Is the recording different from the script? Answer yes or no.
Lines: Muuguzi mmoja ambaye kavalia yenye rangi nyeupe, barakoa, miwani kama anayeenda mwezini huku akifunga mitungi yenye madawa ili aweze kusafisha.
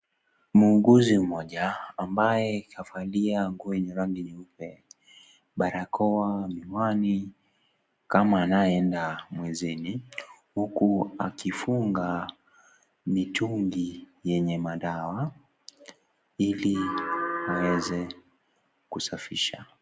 yes